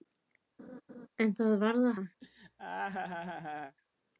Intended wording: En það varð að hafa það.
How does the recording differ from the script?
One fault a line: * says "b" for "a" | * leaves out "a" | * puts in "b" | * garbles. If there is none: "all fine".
* leaves out "hafa"